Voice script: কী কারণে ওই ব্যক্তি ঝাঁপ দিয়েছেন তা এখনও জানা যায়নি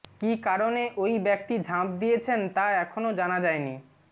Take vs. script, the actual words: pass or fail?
pass